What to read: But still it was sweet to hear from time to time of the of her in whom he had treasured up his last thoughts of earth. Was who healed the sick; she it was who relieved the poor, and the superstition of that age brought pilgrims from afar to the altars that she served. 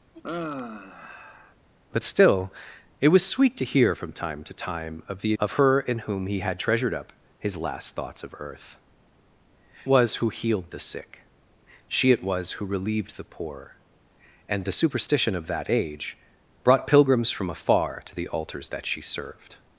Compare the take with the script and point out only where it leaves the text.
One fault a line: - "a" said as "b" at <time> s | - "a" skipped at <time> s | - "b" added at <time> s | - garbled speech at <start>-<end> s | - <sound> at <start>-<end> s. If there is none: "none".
- sigh at 0.1-1.6 s